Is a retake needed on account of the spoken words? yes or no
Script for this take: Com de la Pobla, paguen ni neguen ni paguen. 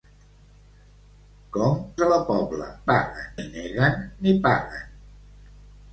no